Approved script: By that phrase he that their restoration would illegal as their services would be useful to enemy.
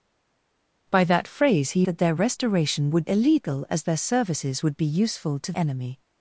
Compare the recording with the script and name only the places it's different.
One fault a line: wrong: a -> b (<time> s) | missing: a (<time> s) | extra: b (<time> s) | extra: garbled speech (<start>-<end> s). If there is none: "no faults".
no faults